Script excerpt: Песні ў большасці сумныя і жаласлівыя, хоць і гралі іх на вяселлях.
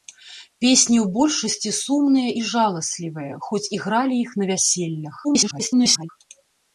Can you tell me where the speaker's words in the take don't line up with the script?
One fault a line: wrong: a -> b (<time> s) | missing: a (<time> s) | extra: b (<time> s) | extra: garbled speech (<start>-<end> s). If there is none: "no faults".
extra: garbled speech (5.2-6.1 s)